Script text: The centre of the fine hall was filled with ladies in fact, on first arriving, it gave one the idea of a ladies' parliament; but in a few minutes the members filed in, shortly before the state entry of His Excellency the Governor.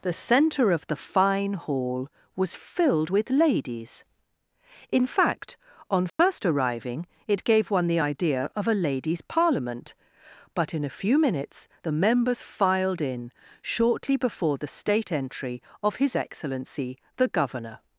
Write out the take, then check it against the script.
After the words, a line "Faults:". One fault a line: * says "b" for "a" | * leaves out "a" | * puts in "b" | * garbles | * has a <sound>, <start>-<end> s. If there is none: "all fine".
The centre of the fine hall was filled with ladies in fact, on first arriving, it gave one the idea of a ladies' parliament; but in a few minutes the members filed in, shortly before the state entry of His Excellency the Governor.
Faults:
* has a dropout, 6.1-6.2 s